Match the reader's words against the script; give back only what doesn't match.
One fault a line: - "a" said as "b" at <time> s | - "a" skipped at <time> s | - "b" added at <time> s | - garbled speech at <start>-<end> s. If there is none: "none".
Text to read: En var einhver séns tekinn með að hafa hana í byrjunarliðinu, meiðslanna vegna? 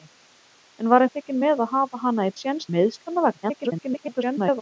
- "einhver séns" skipped at 1.1 s
- "byrjunarliðinu" said as "séns" at 2.4 s
- garbled speech at 3.4-4.6 s